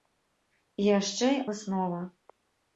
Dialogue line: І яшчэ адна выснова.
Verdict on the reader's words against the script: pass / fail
fail